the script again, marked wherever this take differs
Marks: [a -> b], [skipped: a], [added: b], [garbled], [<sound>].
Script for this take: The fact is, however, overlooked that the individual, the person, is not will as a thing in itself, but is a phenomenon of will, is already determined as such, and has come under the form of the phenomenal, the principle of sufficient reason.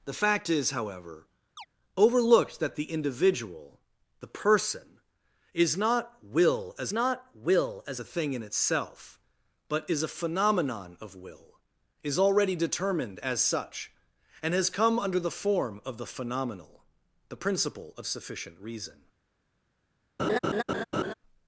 The fact is, however, [chirp] overlooked that the individual, the person, is not will as [added: not will as] a thing in itself, but is a phenomenon of will, is already determined as such, and has come under the form of the phenomenal, the principle of sufficient reason. [laugh]